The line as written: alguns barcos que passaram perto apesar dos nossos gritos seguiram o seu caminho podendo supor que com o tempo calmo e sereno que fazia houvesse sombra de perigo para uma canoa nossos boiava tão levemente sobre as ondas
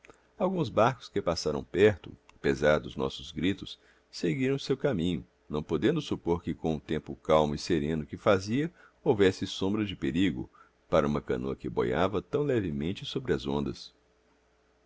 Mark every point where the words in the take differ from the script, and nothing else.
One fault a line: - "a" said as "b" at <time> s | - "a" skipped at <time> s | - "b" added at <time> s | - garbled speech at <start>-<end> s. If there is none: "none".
- "não" added at 5.5 s
- "nossos" said as "que" at 11.6 s